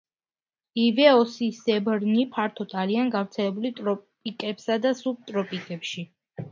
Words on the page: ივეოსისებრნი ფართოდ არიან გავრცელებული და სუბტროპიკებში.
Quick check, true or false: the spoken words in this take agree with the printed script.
false